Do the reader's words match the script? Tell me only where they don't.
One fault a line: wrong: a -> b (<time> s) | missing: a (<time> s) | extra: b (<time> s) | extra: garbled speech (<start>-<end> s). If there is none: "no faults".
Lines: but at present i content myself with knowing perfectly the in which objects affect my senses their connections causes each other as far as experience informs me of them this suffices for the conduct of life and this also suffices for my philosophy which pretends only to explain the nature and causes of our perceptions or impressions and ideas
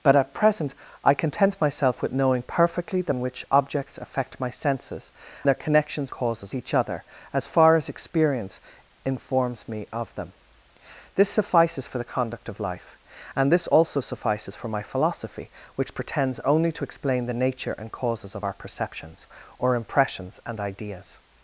no faults